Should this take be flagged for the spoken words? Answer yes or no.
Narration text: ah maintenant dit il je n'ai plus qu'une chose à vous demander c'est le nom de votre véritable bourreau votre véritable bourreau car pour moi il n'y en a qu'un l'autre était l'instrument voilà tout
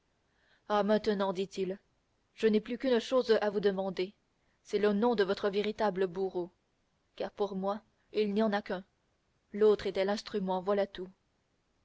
yes